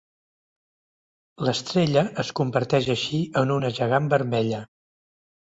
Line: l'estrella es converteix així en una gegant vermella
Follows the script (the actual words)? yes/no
yes